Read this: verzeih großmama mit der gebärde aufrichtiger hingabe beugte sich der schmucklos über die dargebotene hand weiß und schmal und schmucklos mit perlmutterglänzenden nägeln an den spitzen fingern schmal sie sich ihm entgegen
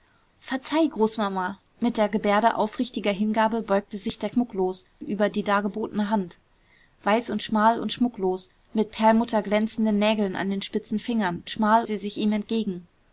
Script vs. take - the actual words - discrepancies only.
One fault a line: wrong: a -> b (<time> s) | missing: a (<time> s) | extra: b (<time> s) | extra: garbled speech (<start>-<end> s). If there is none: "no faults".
no faults